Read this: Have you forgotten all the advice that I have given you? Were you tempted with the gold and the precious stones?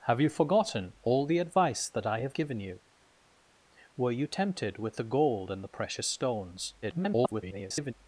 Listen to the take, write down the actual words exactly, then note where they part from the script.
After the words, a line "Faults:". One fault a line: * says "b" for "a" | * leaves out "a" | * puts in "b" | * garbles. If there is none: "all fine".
Have you forgotten all the advice that I have given you? Were you tempted with the gold and the precious stones? [garbled]
Faults:
* garbles